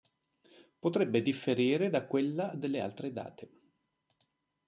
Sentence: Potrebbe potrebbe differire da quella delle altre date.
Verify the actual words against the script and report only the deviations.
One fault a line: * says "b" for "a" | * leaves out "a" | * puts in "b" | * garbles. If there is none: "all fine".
* leaves out "potrebbe"